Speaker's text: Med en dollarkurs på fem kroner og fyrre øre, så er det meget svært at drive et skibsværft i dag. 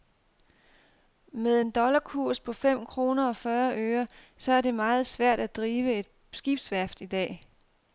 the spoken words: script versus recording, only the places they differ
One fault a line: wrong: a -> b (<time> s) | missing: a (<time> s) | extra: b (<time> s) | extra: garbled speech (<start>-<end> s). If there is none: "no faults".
no faults